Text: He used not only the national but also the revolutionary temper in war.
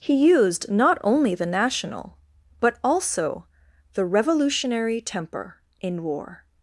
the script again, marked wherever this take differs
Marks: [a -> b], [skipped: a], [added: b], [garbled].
He used not only the national but also the revolutionary temper in war.